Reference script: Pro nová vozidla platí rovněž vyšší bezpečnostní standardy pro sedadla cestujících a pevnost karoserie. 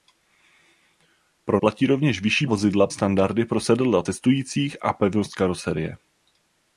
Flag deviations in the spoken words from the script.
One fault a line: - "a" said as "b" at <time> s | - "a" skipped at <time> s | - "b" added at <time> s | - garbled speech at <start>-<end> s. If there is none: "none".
- "nová vozidla" skipped at 1.6 s
- "bezpečnostní" said as "vozidla" at 2.5 s